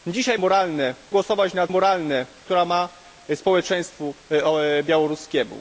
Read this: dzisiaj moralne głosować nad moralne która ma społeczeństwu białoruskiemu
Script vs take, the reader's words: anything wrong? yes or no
no